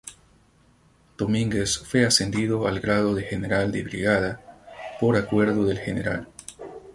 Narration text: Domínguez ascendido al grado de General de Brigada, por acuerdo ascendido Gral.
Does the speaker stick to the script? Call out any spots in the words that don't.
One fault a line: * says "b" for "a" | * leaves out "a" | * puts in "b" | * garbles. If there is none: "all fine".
* puts in "fue"
* says "del" for "ascendido"